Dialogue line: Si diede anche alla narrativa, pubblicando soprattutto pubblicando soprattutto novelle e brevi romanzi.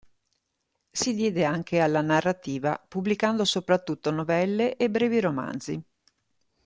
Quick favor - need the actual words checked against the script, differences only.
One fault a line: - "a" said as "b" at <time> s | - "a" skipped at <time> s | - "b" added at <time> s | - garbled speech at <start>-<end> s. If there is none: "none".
- "pubblicando soprattutto" skipped at 4.1 s